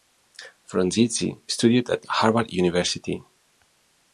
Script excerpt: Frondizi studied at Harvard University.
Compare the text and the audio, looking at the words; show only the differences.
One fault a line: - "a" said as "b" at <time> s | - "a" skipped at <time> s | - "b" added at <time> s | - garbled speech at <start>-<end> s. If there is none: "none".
none